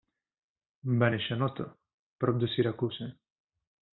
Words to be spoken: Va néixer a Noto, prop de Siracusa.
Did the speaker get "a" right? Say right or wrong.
right